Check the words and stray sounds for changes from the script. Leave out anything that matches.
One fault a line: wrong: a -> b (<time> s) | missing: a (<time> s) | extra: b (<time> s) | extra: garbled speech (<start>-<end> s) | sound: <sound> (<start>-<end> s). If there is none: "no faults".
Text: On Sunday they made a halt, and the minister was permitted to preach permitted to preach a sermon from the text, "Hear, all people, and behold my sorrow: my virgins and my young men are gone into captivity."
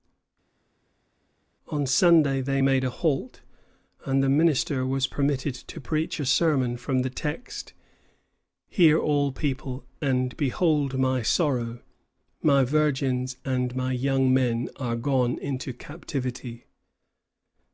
missing: permitted to preach (6.2 s)